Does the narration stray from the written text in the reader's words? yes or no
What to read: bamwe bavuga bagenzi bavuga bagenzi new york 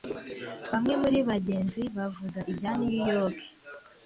yes